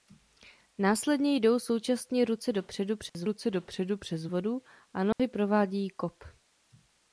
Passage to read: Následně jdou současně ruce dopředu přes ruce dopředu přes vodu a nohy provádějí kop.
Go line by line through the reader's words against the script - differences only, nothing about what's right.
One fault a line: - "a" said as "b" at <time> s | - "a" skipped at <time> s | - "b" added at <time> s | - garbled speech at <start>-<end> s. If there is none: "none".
none